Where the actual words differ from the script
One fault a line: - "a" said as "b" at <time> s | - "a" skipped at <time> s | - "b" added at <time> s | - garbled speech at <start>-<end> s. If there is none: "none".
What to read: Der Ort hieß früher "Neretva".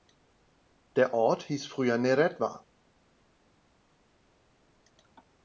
none